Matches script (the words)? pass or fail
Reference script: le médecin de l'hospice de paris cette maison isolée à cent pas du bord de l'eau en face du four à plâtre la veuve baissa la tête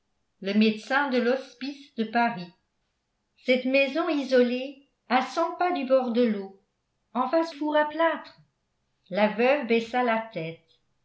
fail